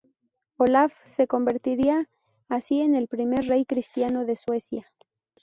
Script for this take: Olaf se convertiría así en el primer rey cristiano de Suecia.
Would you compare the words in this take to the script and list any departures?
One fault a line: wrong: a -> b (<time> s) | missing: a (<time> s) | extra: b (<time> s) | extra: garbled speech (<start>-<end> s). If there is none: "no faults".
no faults